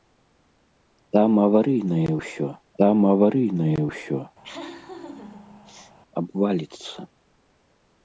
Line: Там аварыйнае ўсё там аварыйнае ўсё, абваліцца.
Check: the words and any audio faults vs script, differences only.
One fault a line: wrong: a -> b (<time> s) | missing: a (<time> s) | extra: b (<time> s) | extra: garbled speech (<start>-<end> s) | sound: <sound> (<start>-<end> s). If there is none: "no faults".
sound: laugh (4.4-6.0 s)